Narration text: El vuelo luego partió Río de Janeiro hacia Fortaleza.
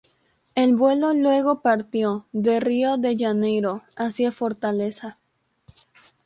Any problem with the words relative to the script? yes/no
yes